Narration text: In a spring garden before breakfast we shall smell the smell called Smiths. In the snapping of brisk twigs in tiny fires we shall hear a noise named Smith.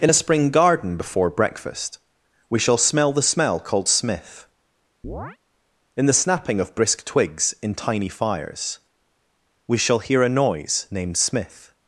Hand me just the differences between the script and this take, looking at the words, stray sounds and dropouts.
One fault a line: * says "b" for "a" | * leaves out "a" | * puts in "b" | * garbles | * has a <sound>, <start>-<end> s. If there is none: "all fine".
* says "Smith" for "Smiths"
* has a chirp, 5.0-5.4 s